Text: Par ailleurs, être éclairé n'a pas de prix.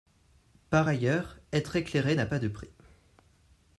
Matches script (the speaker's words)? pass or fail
pass